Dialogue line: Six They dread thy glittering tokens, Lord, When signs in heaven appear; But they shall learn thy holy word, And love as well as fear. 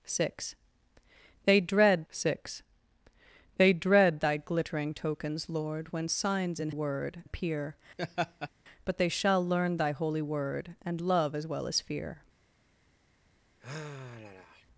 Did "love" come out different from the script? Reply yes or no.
no